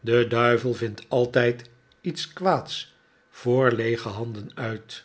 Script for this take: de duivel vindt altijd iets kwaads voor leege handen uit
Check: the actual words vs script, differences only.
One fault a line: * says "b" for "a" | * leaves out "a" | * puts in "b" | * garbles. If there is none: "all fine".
all fine